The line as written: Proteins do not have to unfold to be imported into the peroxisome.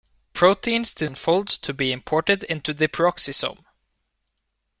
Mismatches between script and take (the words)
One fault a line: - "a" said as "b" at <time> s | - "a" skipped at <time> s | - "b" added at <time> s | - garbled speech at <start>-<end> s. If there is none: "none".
- "not have to" skipped at 1.1 s